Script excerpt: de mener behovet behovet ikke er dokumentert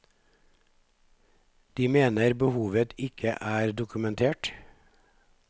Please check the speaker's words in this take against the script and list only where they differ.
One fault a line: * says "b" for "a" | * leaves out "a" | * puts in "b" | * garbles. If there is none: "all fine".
* leaves out "behovet"